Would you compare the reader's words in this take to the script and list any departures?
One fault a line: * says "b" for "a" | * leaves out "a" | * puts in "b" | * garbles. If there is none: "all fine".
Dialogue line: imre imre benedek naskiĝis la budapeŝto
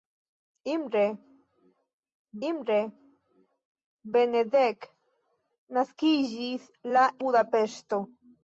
all fine